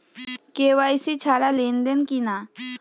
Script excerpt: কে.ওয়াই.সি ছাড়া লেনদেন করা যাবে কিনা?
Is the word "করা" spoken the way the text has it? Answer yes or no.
no